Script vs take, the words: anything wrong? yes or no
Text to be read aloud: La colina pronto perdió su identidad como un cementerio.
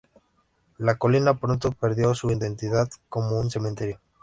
no